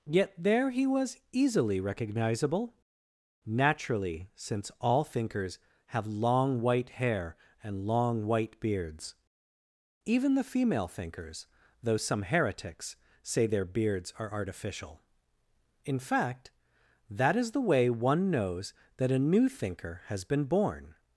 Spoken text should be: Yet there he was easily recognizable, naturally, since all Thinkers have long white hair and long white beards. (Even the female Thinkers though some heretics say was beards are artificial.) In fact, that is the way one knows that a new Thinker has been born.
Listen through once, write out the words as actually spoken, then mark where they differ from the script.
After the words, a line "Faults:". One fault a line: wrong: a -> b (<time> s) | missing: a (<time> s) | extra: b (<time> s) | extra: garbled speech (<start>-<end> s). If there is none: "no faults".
Yet there he was easily recognizable, naturally, since all Thinkers have long white hair and long white beards. (Even the female Thinkers though some heretics say their beards are artificial.) In fact, that is the way one knows that a new Thinker has been born.
Faults:
wrong: was -> their (13.5 s)